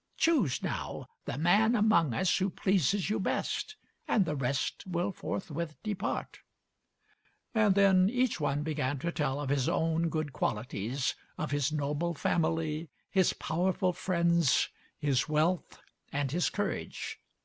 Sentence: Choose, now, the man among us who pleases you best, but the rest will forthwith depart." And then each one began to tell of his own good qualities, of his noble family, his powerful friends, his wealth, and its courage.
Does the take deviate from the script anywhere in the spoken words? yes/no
yes